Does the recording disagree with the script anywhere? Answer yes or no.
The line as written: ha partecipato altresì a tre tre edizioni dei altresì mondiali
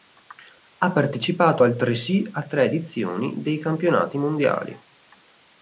yes